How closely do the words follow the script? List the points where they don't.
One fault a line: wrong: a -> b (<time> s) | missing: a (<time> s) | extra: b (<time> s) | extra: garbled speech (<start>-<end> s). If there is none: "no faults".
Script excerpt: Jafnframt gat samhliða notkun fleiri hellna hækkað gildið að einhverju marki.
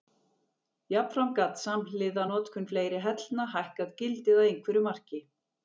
no faults